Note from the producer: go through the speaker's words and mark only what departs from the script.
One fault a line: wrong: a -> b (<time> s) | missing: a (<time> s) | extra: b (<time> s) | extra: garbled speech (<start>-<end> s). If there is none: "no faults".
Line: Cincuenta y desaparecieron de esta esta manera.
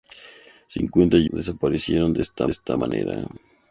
no faults